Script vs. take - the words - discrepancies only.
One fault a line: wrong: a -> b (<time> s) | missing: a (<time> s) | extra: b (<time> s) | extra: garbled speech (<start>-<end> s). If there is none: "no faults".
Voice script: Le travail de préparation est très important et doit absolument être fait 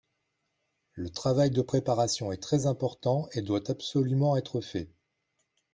no faults